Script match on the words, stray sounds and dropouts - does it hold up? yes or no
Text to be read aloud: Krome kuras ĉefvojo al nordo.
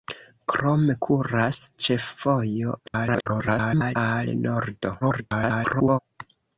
no